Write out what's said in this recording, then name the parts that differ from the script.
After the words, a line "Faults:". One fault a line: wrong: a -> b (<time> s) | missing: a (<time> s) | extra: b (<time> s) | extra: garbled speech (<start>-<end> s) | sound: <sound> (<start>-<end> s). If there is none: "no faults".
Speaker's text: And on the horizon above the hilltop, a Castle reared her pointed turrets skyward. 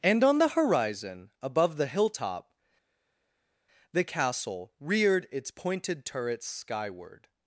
And on the horizon above the hilltop, the Castle reared its pointed turrets skyward.
Faults:
wrong: a -> the (3.9 s)
wrong: her -> its (5.3 s)